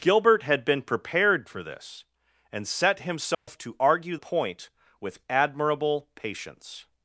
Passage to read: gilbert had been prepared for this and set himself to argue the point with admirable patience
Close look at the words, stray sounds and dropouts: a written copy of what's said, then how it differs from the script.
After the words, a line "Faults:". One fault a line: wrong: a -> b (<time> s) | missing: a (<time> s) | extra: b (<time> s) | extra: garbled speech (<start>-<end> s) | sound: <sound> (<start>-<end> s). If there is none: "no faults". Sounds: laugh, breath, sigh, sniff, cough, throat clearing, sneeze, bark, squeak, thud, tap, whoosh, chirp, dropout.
gilbert had been prepared for this and set himself to argue point with admirable patience
Faults:
sound: dropout (3.3-3.5 s)
missing: the (4.2 s)